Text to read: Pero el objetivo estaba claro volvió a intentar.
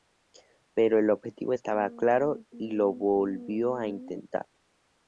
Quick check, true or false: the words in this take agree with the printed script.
false